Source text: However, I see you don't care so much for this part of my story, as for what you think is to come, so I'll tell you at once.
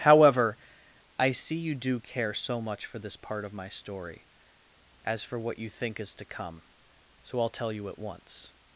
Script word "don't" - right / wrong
wrong